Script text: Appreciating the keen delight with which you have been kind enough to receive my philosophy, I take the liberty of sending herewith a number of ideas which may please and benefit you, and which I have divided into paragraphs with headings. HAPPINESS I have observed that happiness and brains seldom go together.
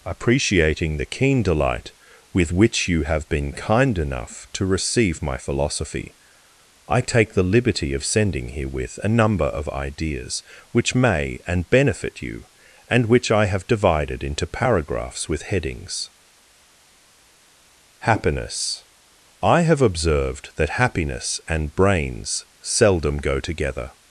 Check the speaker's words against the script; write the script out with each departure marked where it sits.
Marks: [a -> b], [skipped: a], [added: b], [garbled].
Appreciating the keen delight with which you have been kind enough to receive my philosophy, I take the liberty of sending herewith a number of ideas which may [skipped: please] and benefit you, and which I have divided into paragraphs with headings. HAPPINESS I have observed that happiness and brains seldom go together.